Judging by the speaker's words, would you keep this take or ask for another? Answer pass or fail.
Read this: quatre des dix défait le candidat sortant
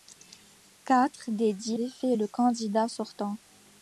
pass